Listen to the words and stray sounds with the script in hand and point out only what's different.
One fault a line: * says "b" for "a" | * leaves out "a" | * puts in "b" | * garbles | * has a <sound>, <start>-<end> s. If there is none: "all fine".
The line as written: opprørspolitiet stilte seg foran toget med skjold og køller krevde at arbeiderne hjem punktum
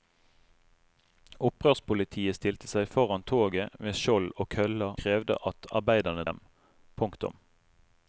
all fine